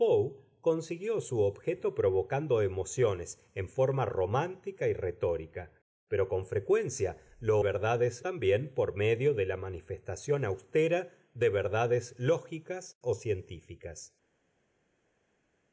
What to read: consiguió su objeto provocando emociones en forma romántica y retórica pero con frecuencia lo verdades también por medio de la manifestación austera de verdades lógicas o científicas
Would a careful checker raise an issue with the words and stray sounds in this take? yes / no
no